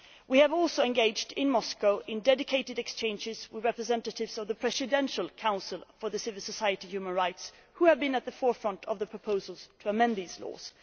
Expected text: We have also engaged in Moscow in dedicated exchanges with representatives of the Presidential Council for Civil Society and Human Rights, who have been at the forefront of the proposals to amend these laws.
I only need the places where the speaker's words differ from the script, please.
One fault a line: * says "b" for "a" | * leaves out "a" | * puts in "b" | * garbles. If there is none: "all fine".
all fine